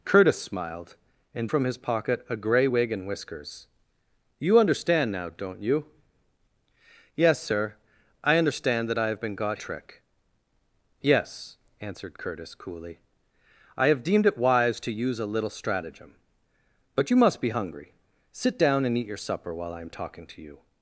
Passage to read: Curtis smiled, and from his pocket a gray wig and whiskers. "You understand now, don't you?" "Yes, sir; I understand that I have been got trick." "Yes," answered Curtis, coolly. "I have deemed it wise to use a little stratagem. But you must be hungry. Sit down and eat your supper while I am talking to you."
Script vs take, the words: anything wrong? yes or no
no